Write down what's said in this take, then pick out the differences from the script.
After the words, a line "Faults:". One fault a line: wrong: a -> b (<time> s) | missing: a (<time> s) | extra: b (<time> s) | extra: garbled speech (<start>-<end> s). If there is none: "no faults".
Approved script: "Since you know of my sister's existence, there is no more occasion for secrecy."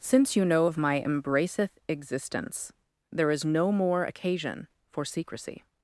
"Since you know of my embraceth existence, there is no more occasion for secrecy."
Faults:
wrong: sister's -> embraceth (1.0 s)